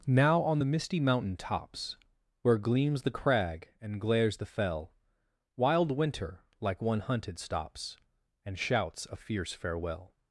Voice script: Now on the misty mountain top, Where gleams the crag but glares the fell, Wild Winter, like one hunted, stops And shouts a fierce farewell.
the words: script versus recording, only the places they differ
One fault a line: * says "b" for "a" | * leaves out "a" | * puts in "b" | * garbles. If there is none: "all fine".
* says "tops" for "top"
* says "and" for "but"